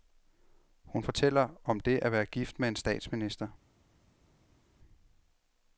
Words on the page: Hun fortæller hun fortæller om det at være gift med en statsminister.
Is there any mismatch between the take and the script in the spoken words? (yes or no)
yes